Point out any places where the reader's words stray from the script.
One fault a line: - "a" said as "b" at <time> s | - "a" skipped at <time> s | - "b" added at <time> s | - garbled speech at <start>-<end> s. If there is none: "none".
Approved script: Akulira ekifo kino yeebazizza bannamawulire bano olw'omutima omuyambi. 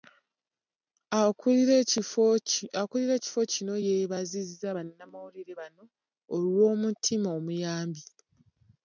none